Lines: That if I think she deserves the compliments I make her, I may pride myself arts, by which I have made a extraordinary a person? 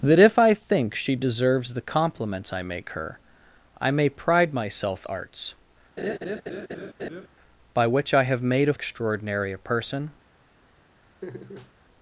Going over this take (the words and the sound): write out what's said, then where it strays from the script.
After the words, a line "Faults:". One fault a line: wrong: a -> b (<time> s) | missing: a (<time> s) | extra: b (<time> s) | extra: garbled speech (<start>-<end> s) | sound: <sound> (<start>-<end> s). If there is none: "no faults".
That if I think she deserves the compliments I make her, I may pride myself arts, by which I have made a extraordinary a person?
Faults:
sound: laugh (6.0-7.3 s)
sound: laugh (11.2-11.7 s)